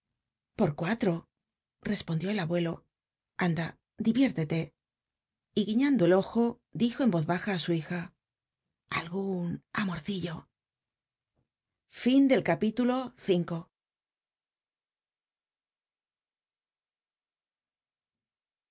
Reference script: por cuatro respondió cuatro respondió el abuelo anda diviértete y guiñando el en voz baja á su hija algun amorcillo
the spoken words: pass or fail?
fail